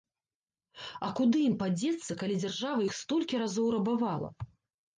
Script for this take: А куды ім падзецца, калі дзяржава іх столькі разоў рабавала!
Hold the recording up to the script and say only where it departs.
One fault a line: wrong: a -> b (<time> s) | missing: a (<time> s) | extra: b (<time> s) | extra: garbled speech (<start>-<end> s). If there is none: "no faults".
no faults